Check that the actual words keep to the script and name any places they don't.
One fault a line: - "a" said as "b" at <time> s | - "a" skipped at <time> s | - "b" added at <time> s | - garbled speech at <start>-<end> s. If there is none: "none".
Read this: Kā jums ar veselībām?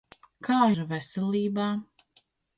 - "jums" skipped at 0.6 s